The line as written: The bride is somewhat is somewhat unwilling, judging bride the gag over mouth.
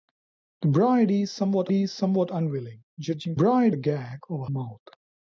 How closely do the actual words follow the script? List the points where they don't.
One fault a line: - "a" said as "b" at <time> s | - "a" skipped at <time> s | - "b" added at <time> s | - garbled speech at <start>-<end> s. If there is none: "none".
none